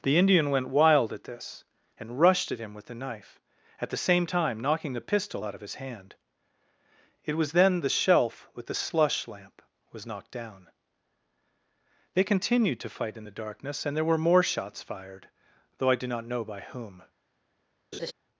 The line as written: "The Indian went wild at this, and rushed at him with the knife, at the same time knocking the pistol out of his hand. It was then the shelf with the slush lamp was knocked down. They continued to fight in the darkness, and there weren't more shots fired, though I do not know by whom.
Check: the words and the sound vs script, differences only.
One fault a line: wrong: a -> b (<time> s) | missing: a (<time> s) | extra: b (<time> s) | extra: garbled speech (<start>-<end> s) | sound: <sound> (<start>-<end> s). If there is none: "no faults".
wrong: weren't -> were (14.0 s)
sound: laugh (17.9-18.1 s)